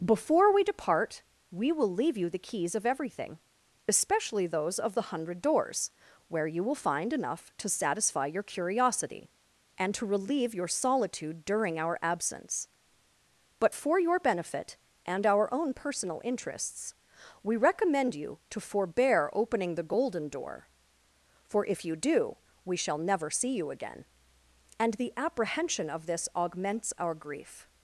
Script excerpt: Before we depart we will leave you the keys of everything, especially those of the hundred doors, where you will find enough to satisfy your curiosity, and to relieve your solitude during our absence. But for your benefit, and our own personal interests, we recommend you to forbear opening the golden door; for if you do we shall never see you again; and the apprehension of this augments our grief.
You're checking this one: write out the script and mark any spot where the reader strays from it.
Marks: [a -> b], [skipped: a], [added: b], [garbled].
Before we depart we will leave you the keys of everything, especially those of the hundred doors, where you will find enough to satisfy your curiosity, and to relieve your solitude during our absence. But for your benefit, and our own personal interests, we recommend you to forbear opening the golden door; for if you do we shall never see you again; and the apprehension of this augments our grief.